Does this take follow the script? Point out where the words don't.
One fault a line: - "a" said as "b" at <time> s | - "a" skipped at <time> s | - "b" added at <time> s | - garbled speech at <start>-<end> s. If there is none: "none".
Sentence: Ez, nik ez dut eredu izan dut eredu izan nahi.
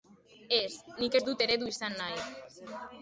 - "dut eredu izan" skipped at 2.0 s